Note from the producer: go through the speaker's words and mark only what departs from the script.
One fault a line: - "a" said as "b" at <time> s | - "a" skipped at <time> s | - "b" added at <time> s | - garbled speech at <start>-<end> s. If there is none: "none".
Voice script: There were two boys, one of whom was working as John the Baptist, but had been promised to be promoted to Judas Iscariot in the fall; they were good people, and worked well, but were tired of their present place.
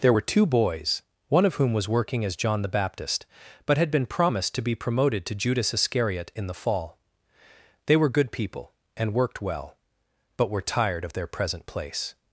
none